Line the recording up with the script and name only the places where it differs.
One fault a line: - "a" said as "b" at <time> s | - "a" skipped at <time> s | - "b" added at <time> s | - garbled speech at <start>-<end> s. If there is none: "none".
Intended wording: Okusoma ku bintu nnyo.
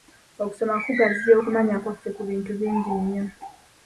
- "kugaziya okumanya kwaffe" added at 0.8 s
- "bingi" added at 2.6 s